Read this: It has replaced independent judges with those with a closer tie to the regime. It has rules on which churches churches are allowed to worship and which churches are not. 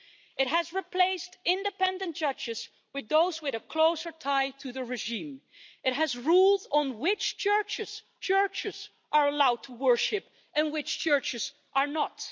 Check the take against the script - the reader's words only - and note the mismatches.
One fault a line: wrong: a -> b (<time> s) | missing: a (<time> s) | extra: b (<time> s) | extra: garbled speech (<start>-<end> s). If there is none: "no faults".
no faults